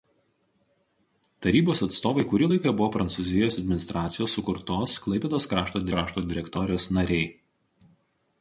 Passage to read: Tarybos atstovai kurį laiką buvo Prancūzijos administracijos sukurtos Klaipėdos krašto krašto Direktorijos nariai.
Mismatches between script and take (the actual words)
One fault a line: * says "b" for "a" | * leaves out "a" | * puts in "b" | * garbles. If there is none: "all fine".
all fine